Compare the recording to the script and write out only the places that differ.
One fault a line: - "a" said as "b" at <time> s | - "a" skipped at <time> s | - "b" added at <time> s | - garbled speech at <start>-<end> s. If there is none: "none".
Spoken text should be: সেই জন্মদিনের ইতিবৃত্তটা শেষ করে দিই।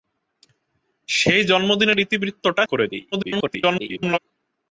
- "শেষ" skipped at 2.6 s
- garbled speech at 3.1-4.2 s